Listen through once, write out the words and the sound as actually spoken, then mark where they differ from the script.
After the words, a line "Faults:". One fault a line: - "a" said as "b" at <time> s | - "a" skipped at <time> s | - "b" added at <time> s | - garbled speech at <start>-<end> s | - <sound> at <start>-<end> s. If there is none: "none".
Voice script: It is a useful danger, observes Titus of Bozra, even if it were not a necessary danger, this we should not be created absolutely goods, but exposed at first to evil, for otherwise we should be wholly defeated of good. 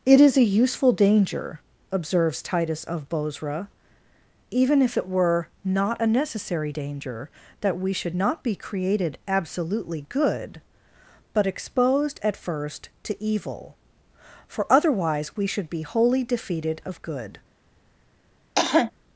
It is a useful danger, observes Titus of Bozra, even if it were not a necessary danger, that we should not be created absolutely good, but exposed at first to evil, for otherwise we should be wholly defeated of good.
Faults:
- "this" said as "that" at 7.6 s
- "goods" said as "good" at 10.1 s
- cough at 18.6-18.9 s